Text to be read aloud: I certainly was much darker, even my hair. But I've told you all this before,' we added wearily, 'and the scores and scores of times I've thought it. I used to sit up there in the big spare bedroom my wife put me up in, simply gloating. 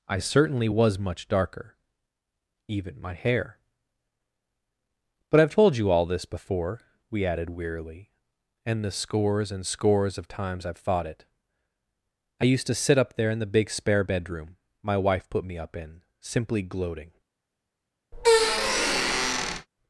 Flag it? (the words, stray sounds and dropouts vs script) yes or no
yes